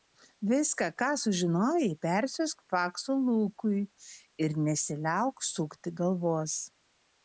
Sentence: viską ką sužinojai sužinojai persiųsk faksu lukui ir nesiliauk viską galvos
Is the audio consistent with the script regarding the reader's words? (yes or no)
no